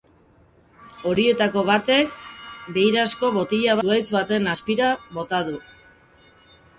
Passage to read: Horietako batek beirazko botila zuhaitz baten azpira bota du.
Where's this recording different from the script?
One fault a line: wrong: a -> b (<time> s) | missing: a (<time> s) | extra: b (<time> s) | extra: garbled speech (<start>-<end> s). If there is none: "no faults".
no faults